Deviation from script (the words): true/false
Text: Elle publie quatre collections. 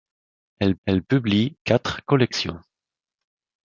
true